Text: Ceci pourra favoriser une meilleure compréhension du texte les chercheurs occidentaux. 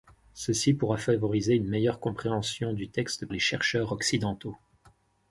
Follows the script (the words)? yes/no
yes